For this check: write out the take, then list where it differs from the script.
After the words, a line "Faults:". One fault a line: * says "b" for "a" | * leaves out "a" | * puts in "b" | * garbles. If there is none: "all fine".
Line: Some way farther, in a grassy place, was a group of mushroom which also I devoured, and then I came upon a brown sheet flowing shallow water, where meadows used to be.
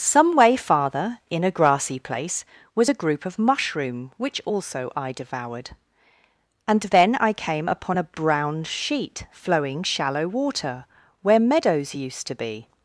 Some way farther, in a grassy place, was a group of mushroom which also I devoured, and then I came upon a brown sheet flowing shallow water, where meadows used to be.
Faults:
all fine